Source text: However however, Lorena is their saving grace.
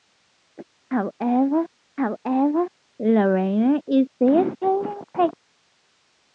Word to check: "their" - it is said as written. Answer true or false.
true